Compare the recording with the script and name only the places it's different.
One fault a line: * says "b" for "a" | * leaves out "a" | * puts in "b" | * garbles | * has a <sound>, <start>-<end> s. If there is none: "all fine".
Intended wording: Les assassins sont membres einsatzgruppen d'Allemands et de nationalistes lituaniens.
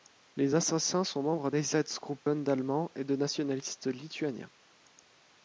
* has a dropout, 2.2-2.3 s